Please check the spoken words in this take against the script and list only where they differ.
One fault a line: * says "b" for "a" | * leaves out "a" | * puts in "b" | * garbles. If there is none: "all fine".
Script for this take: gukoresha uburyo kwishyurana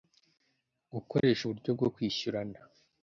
* puts in "bwo"